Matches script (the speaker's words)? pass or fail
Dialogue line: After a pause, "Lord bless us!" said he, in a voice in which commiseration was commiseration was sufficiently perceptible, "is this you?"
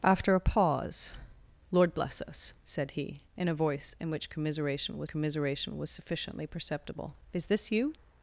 pass